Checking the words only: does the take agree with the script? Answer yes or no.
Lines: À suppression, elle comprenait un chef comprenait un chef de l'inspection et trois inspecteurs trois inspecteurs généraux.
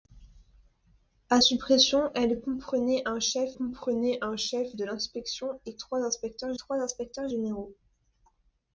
yes